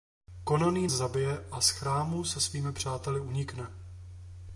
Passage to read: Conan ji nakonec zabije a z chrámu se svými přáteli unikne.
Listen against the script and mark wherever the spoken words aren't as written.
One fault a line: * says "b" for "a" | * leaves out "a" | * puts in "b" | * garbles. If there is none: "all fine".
* leaves out "nakonec"